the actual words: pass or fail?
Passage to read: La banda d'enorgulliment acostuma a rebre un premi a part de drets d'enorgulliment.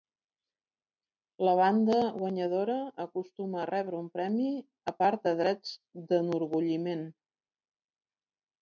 fail